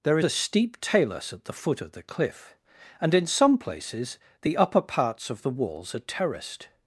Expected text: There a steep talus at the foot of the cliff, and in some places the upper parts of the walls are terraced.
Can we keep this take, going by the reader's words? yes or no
yes